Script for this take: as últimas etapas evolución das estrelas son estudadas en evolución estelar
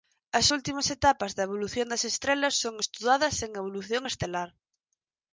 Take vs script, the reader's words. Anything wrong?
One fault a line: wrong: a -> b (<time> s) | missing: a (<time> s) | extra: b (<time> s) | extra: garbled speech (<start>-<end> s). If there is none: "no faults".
extra: da (1.3 s)